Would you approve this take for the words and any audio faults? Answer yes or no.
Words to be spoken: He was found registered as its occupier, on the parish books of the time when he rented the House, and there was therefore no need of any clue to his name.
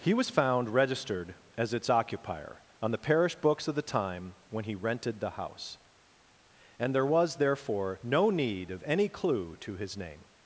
yes